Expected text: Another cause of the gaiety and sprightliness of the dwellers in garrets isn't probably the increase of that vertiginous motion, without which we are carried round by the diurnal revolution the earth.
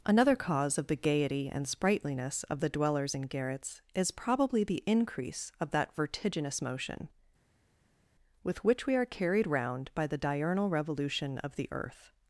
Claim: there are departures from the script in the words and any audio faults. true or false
true